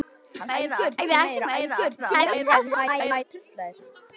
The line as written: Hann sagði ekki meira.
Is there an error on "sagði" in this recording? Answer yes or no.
yes